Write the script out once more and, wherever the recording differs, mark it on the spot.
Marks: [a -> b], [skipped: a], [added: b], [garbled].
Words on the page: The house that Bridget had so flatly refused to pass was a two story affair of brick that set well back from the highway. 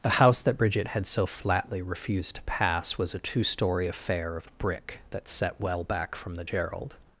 The house that Bridget had so flatly refused to pass was a two story affair of brick that set well back from the [highway. -> gerald]